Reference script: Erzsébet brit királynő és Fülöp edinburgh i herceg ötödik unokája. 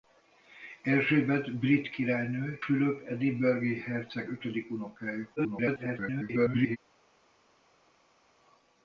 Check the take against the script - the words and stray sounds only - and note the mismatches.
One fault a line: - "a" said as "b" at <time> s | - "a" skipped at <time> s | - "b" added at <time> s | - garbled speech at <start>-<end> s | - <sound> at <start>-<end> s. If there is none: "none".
- "és" skipped at 2.6 s
- garbled speech at 5.4-6.8 s